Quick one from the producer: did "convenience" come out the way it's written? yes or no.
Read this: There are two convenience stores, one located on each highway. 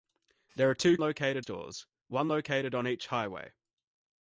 no